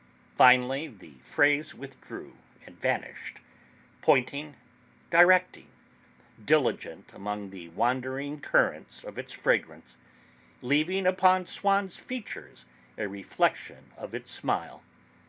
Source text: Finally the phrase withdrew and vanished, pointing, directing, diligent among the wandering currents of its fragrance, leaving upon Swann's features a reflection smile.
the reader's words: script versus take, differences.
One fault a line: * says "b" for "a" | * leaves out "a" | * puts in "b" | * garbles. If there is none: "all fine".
* puts in "of its"